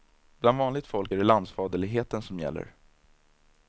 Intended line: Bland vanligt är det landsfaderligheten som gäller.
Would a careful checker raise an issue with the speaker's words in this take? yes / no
yes